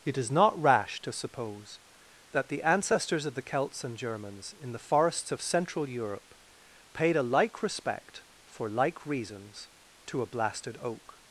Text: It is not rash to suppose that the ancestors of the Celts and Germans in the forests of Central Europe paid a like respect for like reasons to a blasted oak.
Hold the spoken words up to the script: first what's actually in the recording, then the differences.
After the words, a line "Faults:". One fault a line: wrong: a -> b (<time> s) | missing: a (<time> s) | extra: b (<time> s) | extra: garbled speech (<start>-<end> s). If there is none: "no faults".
It is not rash to suppose that the ancestors of the Celts and Germans in the forests of Central Europe paid a like respect for like reasons to a blasted oak.
Faults:
no faults